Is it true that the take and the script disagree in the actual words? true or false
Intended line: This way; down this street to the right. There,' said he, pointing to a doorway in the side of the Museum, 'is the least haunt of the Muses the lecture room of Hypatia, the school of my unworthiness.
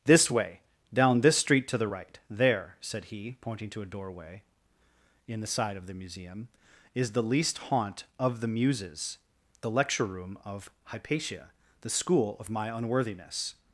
false